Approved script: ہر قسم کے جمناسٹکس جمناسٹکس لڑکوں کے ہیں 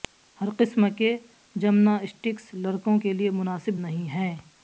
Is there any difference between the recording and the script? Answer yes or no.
yes